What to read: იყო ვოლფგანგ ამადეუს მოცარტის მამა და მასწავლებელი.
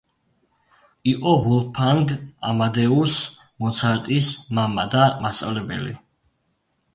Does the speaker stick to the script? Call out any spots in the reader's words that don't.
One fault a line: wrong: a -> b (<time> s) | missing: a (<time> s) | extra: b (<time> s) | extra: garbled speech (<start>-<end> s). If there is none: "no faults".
no faults